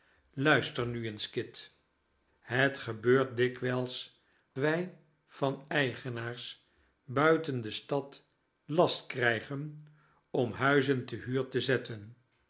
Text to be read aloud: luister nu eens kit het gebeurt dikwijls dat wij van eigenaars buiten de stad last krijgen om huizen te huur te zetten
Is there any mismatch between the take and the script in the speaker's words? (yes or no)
yes